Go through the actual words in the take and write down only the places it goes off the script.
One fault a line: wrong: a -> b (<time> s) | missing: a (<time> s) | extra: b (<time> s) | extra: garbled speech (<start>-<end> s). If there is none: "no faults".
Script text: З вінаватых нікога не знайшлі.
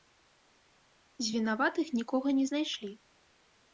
no faults